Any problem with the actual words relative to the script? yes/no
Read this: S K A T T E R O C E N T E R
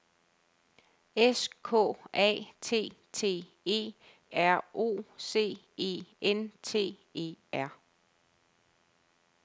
no